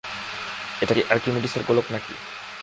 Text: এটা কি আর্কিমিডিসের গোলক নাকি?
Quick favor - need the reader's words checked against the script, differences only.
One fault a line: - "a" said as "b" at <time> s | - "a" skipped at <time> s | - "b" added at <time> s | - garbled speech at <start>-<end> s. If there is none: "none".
none